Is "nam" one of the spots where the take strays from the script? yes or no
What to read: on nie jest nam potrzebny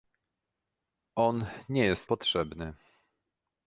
yes